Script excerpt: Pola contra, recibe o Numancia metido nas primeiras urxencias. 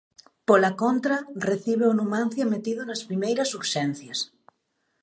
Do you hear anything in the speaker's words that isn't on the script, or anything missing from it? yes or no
no